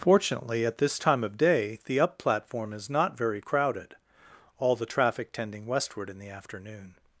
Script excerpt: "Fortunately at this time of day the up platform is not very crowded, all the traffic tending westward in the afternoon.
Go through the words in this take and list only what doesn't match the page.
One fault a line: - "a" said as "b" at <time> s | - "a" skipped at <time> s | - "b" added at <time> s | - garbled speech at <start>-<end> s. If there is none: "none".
none